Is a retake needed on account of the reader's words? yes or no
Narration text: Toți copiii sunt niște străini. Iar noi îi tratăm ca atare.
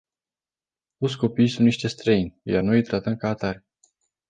no